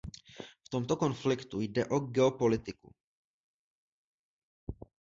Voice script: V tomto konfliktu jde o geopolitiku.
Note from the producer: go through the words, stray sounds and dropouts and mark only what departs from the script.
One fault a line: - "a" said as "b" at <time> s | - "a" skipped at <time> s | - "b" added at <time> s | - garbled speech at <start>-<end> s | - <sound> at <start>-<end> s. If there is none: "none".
none